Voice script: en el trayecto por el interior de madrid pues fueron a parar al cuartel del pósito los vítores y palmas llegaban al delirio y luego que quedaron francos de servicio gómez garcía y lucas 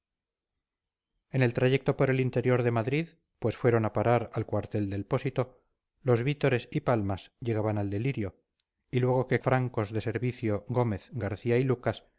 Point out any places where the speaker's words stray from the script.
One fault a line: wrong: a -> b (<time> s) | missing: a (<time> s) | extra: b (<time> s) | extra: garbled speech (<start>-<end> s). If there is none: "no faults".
missing: quedaron (9.4 s)